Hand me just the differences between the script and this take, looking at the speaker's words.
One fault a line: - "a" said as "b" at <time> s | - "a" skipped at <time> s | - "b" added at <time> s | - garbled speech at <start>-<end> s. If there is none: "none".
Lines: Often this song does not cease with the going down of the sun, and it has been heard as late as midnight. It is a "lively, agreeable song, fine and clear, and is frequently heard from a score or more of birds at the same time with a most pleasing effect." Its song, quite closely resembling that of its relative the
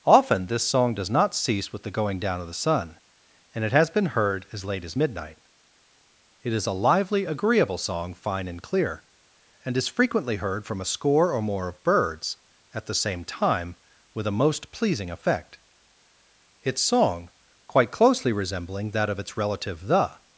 none